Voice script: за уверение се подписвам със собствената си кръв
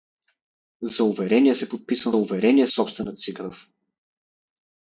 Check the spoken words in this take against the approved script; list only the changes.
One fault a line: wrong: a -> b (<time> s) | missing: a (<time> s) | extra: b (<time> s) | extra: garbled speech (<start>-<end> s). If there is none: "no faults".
wrong: със -> уверение (2.2 s)